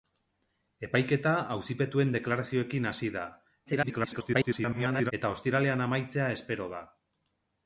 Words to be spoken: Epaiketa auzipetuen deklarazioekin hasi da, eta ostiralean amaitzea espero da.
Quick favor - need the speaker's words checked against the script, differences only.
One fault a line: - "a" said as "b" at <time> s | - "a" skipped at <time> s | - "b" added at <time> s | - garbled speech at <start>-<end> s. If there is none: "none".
- garbled speech at 3.7-5.1 s